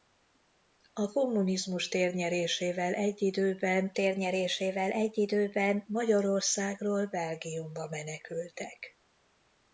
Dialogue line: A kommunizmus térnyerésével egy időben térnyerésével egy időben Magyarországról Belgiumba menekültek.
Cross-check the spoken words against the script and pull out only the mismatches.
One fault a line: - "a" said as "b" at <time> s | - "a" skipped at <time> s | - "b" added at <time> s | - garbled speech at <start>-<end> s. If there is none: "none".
none